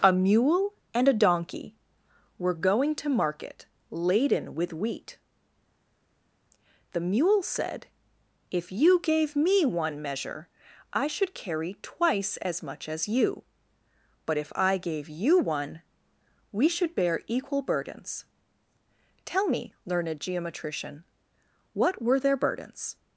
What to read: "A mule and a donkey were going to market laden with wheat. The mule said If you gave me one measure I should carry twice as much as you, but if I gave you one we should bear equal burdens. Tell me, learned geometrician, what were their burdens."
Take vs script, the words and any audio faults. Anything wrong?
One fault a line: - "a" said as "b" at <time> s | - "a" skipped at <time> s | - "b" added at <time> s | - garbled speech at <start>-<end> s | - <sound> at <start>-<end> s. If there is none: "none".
none